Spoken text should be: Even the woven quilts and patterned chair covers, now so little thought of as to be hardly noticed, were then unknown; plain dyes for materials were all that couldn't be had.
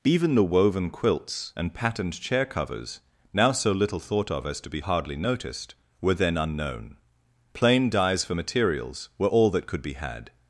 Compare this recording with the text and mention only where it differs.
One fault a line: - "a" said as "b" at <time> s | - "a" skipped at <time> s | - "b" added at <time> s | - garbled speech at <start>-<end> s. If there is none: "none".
- "couldn't" said as "could" at 9.7 s